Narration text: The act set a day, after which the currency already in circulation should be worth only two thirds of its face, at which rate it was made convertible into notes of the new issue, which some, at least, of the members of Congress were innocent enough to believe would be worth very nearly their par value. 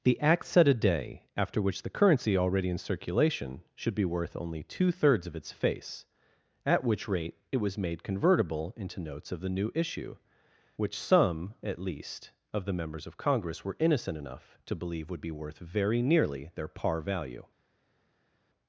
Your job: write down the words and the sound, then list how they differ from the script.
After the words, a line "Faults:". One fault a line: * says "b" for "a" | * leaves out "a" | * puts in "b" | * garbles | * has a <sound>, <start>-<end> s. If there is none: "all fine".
The act set a day, after which the currency already in circulation should be worth only two thirds of its face, at which rate it was made convertible into notes of the new issue, which some, at least, of the members of Congress were innocent enough to believe would be worth very nearly their par value.
Faults:
all fine